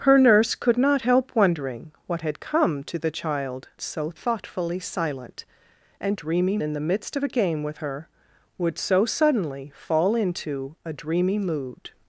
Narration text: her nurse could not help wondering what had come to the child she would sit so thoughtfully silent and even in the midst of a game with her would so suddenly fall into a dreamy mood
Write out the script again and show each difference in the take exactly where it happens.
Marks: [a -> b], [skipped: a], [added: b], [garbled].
her nurse could not help wondering what had come to the child [skipped: she would sit] so thoughtfully silent and [even -> dreamy] in the midst of a game with her would so suddenly fall into a dreamy mood